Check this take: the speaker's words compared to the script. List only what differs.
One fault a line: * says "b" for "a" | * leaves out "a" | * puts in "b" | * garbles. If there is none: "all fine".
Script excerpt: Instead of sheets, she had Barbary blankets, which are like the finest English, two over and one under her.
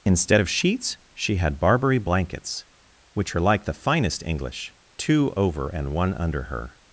all fine